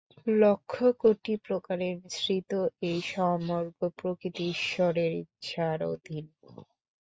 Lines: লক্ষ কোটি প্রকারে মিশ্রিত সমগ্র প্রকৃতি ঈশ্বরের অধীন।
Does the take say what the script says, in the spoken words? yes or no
no